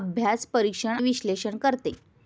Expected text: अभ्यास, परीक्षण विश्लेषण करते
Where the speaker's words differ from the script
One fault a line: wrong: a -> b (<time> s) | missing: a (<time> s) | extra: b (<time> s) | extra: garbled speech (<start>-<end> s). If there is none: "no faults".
no faults